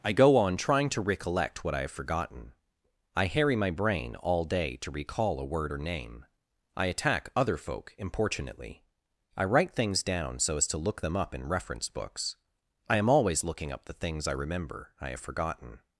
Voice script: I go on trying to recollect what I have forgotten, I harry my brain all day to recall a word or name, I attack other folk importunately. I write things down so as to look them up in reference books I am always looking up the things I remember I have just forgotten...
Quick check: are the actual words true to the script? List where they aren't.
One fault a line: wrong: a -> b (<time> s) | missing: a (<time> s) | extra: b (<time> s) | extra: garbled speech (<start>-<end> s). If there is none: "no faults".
missing: just (15.2 s)